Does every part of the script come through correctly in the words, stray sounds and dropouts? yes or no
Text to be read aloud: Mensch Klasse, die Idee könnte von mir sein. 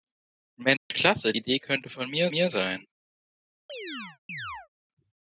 no